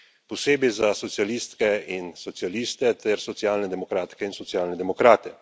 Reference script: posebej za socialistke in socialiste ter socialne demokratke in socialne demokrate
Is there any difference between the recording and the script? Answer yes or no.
no